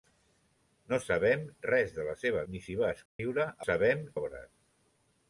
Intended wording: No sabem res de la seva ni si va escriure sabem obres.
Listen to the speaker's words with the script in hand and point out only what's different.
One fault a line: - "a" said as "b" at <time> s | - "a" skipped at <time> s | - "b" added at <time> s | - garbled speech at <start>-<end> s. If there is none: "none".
none